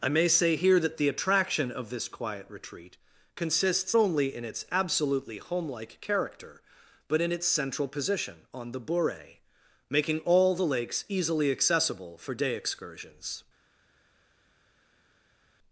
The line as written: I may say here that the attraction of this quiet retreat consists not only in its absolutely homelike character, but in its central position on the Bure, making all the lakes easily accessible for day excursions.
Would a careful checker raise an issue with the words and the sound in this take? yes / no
yes